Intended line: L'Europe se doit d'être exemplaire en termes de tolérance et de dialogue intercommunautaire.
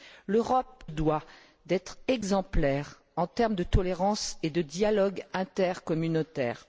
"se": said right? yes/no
no